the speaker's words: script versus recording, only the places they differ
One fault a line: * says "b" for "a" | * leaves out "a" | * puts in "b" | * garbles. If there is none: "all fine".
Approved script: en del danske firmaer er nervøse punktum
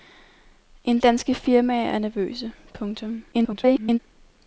* leaves out "del"
* garbles